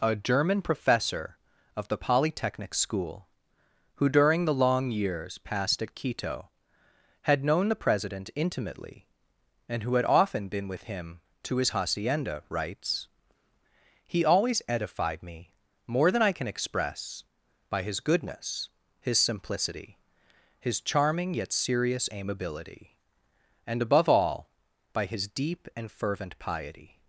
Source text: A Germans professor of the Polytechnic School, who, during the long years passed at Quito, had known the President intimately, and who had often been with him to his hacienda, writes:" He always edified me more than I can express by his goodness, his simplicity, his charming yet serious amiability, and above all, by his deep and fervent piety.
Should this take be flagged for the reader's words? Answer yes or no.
yes